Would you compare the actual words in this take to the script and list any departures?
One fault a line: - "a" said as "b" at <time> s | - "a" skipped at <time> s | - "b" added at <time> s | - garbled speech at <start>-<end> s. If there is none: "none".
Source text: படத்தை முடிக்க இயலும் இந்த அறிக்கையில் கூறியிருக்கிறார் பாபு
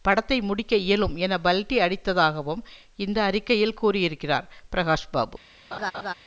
- "என பல்டி அடித்ததாகவும்" added at 1.2 s
- "பிரகாஷ்" added at 4.7 s